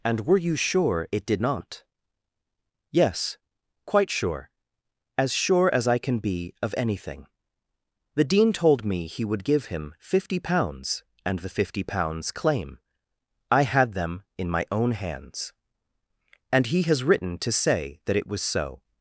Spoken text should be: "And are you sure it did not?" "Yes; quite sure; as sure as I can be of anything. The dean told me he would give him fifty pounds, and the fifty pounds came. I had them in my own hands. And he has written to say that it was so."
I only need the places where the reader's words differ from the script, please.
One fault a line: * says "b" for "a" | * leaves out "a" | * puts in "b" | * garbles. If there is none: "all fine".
* says "were" for "are"
* says "claim" for "came"